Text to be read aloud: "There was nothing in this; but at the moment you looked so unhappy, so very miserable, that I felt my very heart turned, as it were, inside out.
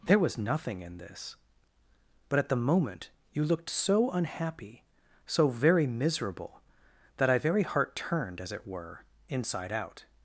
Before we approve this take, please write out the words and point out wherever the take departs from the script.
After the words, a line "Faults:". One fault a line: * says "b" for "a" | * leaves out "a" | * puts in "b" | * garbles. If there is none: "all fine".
"There was nothing in this; but at the moment you looked so unhappy, so very miserable, that I very heart turned, as it were, inside out.
Faults:
* leaves out "felt my"